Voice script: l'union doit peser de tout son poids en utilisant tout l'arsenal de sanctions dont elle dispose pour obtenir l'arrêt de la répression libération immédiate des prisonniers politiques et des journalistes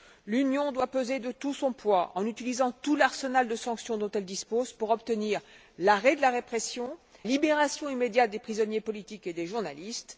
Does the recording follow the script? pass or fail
pass